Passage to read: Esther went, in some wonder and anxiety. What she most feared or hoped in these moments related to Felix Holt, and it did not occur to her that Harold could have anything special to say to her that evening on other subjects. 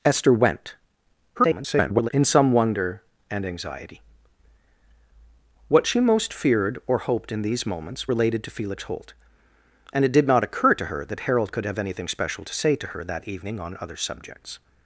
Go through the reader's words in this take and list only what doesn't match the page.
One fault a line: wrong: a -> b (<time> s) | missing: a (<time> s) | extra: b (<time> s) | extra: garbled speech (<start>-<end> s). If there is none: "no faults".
extra: garbled speech (1.4-2.1 s)